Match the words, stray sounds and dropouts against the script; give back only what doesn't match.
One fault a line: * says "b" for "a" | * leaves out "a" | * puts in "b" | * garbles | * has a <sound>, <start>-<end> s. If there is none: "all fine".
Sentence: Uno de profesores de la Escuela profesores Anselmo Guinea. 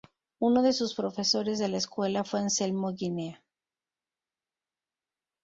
* puts in "sus"
* says "fue" for "profesores"